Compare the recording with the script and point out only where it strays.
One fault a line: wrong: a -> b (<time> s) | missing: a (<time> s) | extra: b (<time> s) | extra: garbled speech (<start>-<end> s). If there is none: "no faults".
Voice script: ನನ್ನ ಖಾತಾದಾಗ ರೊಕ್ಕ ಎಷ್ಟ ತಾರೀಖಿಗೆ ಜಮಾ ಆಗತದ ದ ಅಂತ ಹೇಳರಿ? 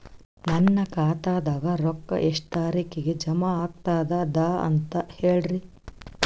no faults